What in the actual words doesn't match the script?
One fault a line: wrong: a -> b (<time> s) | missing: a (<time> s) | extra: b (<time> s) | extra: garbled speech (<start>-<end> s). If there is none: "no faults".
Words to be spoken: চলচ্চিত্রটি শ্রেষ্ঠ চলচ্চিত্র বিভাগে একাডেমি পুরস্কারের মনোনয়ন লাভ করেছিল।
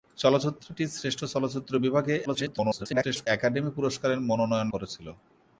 extra: garbled speech (2.3-3.3 s)
missing: লাভ (4.7 s)